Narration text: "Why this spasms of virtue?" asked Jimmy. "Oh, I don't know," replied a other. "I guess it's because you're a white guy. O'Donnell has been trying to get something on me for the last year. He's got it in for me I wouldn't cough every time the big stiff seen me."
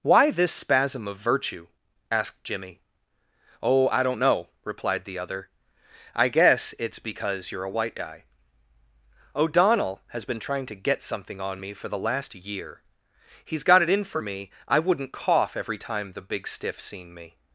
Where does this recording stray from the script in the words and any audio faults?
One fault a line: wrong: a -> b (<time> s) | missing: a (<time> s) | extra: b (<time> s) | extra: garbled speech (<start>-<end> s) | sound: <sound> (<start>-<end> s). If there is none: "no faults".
wrong: spasms -> spasm (0.5 s)
wrong: a -> the (5.0 s)